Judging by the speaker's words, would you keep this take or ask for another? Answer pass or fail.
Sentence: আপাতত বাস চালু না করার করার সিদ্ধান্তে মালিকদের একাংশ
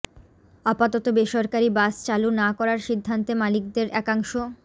fail